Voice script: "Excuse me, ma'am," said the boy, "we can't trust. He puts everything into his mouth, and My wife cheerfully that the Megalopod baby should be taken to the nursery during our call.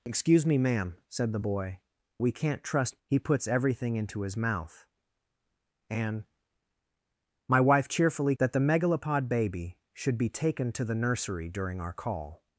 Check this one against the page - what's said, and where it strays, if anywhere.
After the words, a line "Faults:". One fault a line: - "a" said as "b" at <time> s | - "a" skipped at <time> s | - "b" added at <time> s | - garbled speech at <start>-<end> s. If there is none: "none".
"Excuse me, ma'am," said the boy, "we can't trust. He puts everything into his mouth, and My wife cheerfully that the Megalopod baby should be taken to the nursery during our call.
Faults:
none